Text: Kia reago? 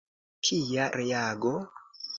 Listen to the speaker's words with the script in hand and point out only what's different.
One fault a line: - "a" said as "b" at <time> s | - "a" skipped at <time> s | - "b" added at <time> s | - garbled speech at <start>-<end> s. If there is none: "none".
none